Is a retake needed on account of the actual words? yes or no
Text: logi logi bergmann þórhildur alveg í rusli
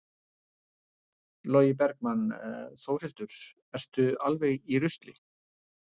yes